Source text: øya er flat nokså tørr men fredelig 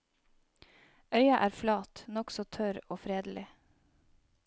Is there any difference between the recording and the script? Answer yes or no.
yes